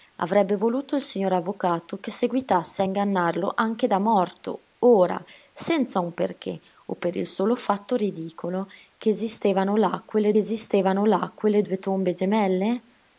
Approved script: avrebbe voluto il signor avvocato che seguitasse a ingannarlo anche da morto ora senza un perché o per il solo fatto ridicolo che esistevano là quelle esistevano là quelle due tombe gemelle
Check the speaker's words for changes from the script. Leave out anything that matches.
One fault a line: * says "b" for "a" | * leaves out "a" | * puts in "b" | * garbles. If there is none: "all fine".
all fine